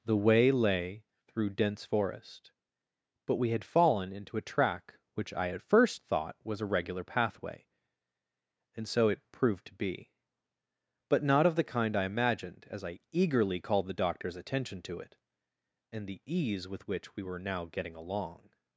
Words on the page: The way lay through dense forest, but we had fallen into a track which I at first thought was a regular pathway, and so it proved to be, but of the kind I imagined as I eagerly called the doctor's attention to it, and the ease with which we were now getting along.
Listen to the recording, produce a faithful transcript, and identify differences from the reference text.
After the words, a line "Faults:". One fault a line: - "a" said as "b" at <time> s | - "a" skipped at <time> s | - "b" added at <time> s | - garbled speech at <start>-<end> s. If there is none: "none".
The way lay through dense forest, but we had fallen into a track which I at first thought was a regular pathway, and so it proved to be, but not of the kind I imagined as I eagerly called the doctor's attention to it, and the ease with which we were now getting along.
Faults:
- "not" added at 11.2 s